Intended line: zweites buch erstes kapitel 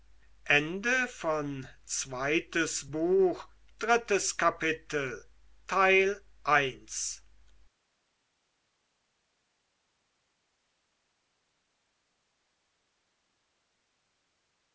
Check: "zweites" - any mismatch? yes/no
no